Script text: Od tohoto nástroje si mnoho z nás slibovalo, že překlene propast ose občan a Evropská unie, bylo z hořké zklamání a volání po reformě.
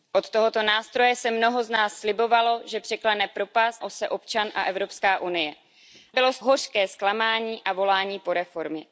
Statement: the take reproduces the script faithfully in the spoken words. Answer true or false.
true